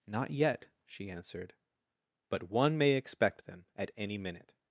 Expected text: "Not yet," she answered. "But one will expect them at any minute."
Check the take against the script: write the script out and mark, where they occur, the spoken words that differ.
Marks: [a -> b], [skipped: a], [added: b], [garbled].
"Not yet," she answered. "But one [will -> may] expect them at any minute."